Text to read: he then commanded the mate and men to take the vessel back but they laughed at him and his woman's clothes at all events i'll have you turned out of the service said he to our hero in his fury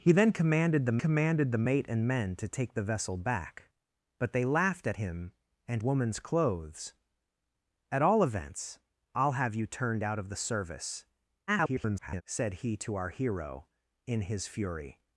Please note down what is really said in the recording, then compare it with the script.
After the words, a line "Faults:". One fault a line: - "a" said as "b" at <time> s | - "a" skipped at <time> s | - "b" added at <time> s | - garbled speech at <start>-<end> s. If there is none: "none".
he then commanded the commanded the mate and men to take the vessel back but they laughed at him and woman's clothes at all events i'll have you turned out of the service [garbled] said he to our hero in his fury
Faults:
- "commanded the" added at 1.0 s
- "his" skipped at 5.8 s
- garbled speech at 11.5-12.2 s